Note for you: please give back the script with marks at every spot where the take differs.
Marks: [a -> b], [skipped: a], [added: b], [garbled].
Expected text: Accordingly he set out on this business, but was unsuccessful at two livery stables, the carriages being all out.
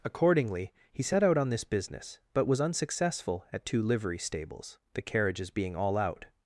Accordingly he set out on this business, but was unsuccessful at two livery stables, the carriages being all out.